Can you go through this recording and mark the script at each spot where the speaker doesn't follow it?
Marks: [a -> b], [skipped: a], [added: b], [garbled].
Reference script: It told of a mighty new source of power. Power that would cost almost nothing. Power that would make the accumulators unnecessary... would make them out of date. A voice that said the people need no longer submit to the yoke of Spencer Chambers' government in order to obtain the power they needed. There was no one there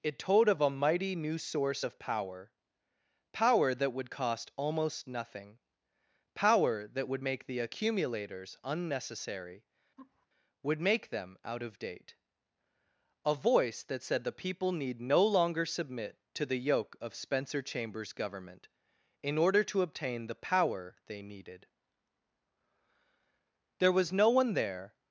It told of a mighty new source of power. Power that would cost almost nothing. Power that would make the accumulators unnecessary... would make them out of date. A voice that said the people need no longer submit to the yoke of Spencer Chambers' government in order to obtain the power they needed. There was no one there